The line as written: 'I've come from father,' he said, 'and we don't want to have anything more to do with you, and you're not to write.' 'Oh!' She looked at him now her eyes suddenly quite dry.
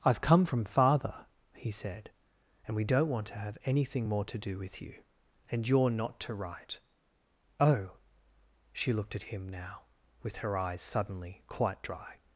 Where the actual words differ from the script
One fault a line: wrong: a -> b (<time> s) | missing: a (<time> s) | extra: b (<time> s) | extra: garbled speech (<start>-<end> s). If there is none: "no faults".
extra: with (10.2 s)